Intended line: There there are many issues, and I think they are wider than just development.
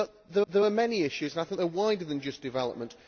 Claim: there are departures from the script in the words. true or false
false